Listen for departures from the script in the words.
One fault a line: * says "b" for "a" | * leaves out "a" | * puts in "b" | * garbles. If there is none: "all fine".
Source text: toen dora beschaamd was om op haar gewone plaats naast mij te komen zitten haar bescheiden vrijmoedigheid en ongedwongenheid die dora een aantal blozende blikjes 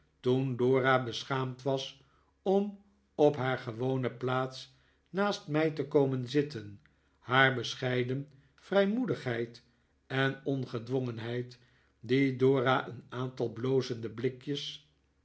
all fine